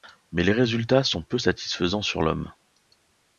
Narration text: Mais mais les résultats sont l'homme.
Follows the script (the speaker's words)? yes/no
no